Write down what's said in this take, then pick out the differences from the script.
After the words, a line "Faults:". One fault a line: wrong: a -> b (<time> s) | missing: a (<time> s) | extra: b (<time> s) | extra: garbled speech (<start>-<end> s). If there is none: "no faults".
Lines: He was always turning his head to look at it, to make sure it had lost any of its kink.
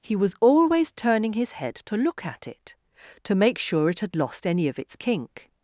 He was always turning his head to look at it, to make sure it had lost any of its kink.
Faults:
no faults